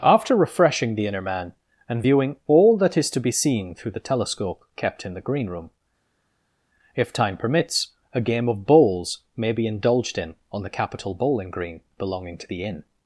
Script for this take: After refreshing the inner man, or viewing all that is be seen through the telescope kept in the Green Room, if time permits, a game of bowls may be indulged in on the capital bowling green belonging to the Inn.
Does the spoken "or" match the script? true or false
false